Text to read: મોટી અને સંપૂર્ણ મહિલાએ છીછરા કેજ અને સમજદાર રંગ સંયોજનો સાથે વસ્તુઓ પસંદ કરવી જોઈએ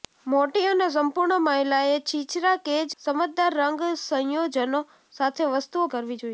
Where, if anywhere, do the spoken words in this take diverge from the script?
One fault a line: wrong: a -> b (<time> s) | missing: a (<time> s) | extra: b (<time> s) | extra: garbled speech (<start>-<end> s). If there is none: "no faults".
missing: અને (3.0 s)
missing: પસંદ (5.9 s)